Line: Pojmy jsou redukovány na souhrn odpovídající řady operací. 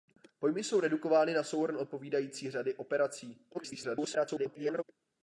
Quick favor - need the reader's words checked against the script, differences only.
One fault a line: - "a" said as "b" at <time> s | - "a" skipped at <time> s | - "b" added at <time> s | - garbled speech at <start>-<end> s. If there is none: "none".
- garbled speech at 3.5-4.8 s